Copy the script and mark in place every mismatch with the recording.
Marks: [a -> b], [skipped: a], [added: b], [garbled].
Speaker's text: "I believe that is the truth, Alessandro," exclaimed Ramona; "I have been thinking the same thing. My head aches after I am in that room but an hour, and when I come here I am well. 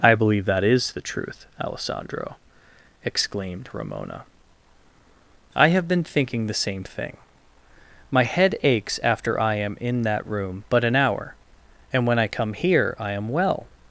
"I believe that is the truth, Alessandro," exclaimed Ramona; "I have been thinking the same thing. My head aches after I am in that room but an hour, and when I come here I am well.